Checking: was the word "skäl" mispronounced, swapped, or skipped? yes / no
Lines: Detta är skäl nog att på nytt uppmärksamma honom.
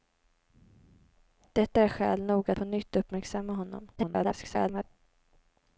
no